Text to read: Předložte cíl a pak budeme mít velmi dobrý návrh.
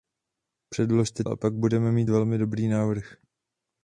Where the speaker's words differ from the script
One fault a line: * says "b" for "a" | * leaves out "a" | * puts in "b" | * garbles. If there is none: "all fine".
* leaves out "cíl"